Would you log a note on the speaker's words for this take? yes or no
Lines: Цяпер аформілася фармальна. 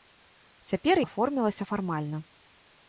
no